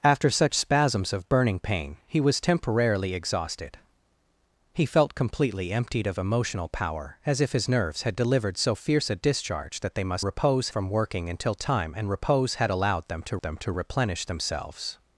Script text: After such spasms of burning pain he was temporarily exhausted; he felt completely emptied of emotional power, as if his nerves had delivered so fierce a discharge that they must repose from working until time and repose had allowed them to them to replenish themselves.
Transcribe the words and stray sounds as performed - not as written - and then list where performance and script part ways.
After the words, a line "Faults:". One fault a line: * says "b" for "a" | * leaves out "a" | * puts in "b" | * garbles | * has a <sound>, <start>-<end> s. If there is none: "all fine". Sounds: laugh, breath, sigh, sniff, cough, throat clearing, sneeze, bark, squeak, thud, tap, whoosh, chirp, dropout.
After such spasms of burning pain he was temporarily exhausted; he felt completely emptied of emotional power, as if his nerves had delivered so fierce a discharge that they must repose from working until time and repose had allowed them to them to replenish themselves.
Faults:
all fine